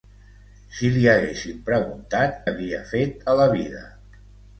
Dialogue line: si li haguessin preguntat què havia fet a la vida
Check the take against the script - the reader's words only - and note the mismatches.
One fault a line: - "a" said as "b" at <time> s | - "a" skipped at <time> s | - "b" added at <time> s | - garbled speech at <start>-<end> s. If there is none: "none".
- "què" skipped at 2.4 s